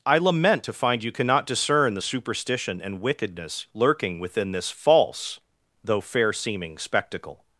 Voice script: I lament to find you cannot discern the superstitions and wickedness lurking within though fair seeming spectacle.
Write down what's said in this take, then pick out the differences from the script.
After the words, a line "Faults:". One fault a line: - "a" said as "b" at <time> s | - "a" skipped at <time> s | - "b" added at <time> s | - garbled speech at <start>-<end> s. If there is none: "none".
I lament to find you cannot discern the superstition and wickedness lurking within this false, though fair seeming spectacle.
Faults:
- "superstitions" said as "superstition" at 2.0 s
- "this false" added at 4.5 s